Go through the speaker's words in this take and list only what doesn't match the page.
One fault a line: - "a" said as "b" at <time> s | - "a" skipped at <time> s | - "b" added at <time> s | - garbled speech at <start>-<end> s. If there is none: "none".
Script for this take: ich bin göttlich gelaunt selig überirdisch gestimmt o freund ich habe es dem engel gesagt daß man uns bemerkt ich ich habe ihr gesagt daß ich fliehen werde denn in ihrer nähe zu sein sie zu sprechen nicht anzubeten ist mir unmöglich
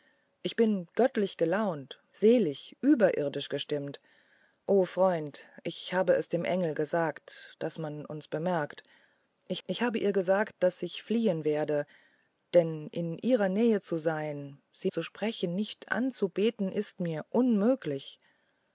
none